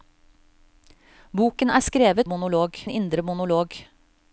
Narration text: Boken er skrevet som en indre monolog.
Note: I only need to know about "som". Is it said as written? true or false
false